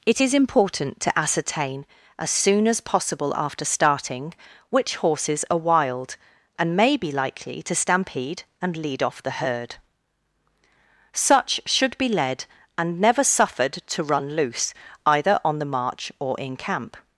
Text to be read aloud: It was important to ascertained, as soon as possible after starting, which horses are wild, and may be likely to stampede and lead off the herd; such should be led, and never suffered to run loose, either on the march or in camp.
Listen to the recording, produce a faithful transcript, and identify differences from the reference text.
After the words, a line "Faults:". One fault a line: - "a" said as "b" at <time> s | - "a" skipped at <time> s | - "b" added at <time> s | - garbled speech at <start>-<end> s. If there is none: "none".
It is important to ascertain, as soon as possible after starting, which horses are wild, and may be likely to stampede and lead off the herd; such should be led, and never suffered to run loose, either on the march or in camp.
Faults:
- "was" said as "is" at 0.2 s
- "ascertained" said as "ascertain" at 1.2 s